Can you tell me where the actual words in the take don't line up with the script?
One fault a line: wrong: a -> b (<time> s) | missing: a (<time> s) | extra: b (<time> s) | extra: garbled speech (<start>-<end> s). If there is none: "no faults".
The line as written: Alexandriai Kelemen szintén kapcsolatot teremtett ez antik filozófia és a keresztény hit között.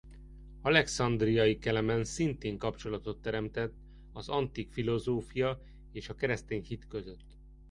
wrong: ez -> az (4.1 s)